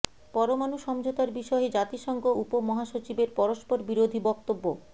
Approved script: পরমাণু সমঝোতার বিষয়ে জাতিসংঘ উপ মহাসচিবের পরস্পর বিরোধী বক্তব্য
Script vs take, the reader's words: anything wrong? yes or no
no